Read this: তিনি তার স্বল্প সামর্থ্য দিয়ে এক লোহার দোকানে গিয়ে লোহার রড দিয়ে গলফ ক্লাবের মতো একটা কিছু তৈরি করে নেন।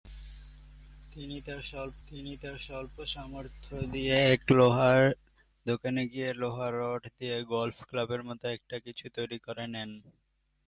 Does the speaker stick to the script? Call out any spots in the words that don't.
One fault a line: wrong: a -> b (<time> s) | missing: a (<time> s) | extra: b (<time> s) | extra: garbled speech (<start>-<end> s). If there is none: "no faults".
extra: তিনি তার স্বল্প (2.1 s)